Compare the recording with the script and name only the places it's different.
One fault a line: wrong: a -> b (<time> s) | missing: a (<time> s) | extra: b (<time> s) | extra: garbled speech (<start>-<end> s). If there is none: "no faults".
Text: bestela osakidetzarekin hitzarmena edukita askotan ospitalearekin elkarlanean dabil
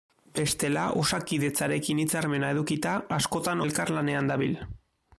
missing: ospitalearekin (3.7 s)